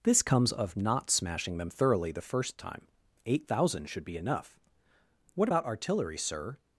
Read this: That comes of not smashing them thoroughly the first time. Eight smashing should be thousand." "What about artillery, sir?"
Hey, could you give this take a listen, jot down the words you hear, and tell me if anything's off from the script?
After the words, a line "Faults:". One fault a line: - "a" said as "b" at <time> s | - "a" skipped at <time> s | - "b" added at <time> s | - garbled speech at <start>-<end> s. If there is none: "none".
This comes of not smashing them thoroughly the first time. Eight thousand should be enough." "What about artillery, sir?"
Faults:
- "That" said as "This" at 0.0 s
- "smashing" said as "thousand" at 3.5 s
- "thousand" said as "enough" at 4.2 s